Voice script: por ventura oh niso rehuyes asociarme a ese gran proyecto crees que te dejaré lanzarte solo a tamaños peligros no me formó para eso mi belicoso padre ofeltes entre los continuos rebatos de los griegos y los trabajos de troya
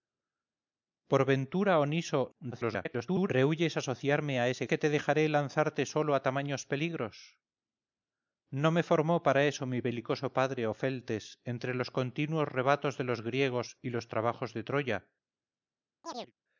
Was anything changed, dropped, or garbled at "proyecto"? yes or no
yes